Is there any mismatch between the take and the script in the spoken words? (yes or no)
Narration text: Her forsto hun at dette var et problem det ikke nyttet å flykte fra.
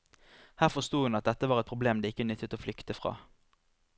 no